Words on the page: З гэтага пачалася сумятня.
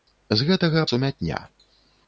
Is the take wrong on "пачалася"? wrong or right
wrong